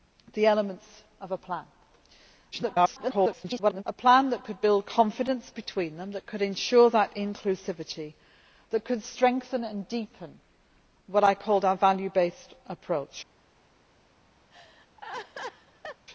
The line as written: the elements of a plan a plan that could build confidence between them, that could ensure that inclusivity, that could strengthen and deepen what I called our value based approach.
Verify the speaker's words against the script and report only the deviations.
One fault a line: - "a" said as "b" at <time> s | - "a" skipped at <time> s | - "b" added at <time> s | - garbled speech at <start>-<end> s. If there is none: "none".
- garbled speech at 2.5-3.8 s